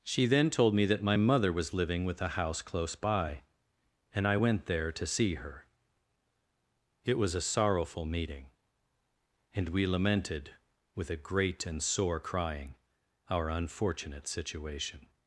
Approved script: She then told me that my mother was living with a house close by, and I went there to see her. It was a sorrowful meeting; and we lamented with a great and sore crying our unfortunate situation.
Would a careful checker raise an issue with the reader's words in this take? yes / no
no